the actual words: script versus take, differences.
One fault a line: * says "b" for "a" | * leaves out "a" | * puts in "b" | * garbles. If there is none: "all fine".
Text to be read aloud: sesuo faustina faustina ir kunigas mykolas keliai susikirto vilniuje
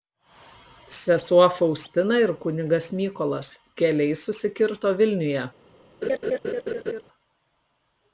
* leaves out "faustina"